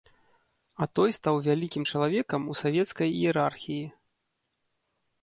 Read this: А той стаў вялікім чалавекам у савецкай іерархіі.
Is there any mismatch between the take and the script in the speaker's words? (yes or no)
no